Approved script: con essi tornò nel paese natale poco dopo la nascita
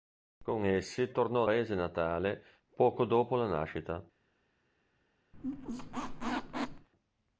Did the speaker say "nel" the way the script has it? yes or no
no